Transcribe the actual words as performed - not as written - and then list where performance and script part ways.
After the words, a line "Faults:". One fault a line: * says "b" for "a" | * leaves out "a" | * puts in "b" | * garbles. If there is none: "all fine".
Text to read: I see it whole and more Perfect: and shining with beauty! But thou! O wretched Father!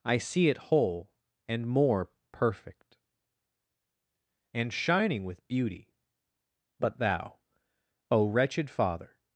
I see it whole and more Perfect: and shining with beauty! But thou! O wretched Father!
Faults:
all fine